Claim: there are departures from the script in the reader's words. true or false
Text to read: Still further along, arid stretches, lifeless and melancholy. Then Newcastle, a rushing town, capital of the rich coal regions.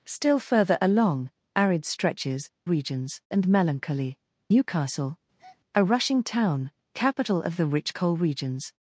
true